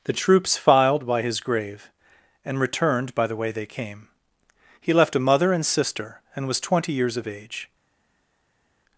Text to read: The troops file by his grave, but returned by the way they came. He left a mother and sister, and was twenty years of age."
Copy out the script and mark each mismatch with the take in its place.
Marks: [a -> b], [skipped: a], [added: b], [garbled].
The troops [file -> filed] by his grave, [but -> and] returned by the way they came. He left a mother and sister, and was twenty years of age."